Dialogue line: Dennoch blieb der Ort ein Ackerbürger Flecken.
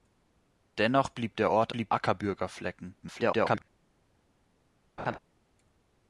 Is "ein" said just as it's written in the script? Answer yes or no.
no